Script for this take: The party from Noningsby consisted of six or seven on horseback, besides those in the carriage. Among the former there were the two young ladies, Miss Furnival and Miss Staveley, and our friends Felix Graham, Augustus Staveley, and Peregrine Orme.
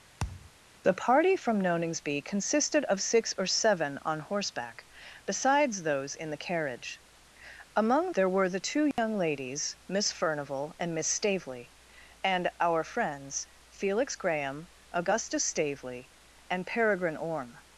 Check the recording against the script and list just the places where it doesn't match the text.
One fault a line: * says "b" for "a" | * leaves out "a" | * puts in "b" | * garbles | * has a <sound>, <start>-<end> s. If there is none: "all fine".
* has a thud, 0.2-0.5 s
* leaves out "the former"
* has a dropout, 8.9-9.0 s